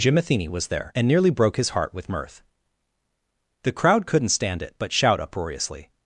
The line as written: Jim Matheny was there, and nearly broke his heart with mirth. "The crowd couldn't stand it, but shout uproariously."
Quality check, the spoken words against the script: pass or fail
pass